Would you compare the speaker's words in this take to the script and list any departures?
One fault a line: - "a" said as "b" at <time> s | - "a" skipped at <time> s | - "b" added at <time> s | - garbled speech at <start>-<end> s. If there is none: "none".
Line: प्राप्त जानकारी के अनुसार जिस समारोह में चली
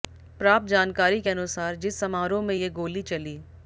- "ये गोली" added at 2.5 s